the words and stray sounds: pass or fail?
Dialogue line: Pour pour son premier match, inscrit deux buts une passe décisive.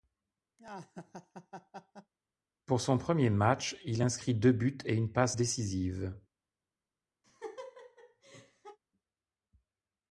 fail